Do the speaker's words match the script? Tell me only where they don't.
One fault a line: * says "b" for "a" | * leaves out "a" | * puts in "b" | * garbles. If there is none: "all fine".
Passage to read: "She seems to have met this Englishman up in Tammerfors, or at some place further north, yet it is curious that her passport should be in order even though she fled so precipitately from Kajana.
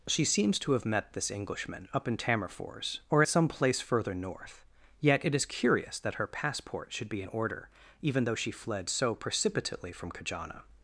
all fine